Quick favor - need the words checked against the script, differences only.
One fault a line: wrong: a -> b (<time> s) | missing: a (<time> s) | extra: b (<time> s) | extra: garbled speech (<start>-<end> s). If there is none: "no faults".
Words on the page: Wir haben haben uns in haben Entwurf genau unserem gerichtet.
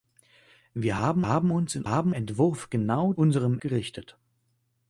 no faults